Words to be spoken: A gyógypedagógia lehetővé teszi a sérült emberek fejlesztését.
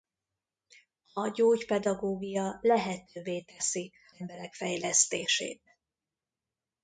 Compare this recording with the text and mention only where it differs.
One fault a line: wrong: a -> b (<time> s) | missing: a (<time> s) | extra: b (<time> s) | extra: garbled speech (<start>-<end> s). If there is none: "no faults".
missing: a sérült (3.9 s)